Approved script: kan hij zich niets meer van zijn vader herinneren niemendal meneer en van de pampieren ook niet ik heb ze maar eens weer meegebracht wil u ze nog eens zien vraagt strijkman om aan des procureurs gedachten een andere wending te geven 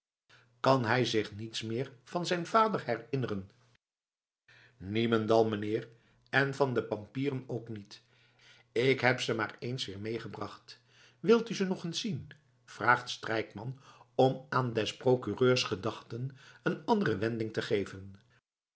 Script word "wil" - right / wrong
right